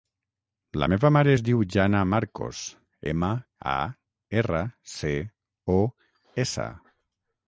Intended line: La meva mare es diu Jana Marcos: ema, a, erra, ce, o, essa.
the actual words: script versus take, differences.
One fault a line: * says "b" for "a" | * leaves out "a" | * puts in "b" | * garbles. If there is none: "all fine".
all fine